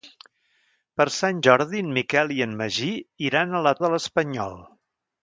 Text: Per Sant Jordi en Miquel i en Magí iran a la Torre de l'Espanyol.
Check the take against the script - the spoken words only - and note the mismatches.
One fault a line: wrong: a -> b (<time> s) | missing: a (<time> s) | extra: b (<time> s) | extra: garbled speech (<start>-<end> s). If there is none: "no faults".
missing: Torre (3.8 s)